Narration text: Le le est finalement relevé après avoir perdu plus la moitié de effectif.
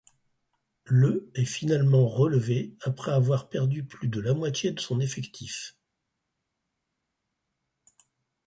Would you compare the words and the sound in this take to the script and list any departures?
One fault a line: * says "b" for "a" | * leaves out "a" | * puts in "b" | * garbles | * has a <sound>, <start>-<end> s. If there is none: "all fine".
* leaves out "le"
* puts in "de"
* puts in "son"